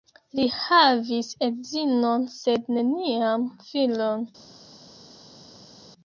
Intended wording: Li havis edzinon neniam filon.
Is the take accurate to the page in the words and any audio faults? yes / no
no